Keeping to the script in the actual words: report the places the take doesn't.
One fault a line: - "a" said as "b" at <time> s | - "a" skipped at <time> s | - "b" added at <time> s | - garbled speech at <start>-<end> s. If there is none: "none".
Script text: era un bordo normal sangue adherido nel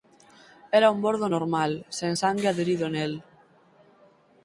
- "sen" added at 2.0 s